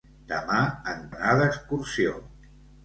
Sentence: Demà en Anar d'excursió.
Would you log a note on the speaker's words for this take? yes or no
no